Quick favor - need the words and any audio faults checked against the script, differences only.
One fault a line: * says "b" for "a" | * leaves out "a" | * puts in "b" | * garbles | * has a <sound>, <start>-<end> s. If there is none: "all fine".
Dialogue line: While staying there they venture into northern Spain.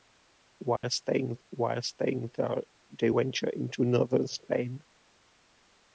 * has a dropout, 0.8-0.8 s
* puts in "while staying"